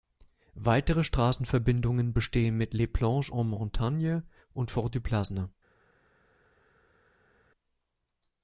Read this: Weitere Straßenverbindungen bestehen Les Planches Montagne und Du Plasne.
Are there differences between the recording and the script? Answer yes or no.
yes